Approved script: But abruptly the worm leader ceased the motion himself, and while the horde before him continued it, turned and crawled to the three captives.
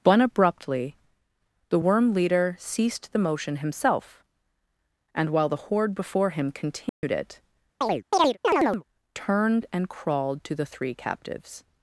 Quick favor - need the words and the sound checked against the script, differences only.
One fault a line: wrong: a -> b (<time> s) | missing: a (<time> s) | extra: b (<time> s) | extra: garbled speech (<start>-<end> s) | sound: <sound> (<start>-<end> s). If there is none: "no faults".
sound: dropout (6.9-7.0 s)
sound: chirp (7.8-8.8 s)